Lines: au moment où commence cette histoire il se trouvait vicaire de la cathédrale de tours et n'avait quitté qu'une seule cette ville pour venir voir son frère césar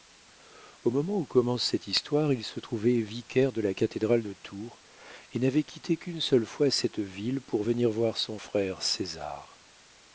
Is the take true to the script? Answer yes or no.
no